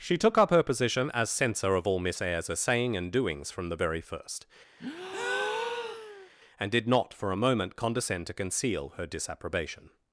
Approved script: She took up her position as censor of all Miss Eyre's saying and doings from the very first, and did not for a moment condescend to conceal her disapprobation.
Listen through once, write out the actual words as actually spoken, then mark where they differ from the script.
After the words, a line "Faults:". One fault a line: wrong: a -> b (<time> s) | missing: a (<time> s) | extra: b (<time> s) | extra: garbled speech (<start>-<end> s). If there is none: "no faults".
She took up her position as censor of all Miss Eyre's saying and doings from the very first, and did not for a moment condescend to conceal her disapprobation.
Faults:
no faults